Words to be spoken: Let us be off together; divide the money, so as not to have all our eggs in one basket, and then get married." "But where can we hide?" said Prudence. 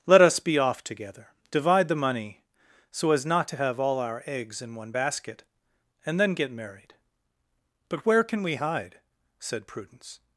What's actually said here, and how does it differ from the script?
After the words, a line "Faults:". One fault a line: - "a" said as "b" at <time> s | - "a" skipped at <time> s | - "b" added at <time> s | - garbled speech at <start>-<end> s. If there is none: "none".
Let us be off together; divide the money, so as not to have all our eggs in one basket, and then get married." "But where can we hide?" said Prudence.
Faults:
none